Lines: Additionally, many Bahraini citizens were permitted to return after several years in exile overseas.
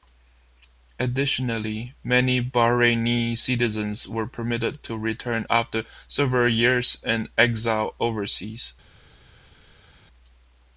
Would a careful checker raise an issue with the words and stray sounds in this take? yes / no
no